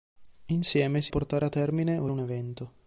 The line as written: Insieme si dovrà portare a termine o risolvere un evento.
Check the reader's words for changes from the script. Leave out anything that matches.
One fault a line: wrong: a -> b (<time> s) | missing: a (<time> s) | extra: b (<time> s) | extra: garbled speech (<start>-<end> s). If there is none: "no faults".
missing: dovrà (1.1 s)
missing: risolvere (2.1 s)